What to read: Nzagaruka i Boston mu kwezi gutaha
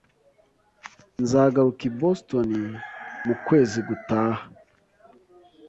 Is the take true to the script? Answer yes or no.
yes